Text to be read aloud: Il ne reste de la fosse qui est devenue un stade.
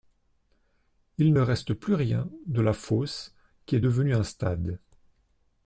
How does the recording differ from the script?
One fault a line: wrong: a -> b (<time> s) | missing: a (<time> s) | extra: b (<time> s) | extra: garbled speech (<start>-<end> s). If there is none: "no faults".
extra: plus rien (1.7 s)